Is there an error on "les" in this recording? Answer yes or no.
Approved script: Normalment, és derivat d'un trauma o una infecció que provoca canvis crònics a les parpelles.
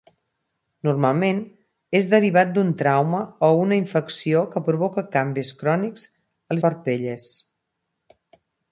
yes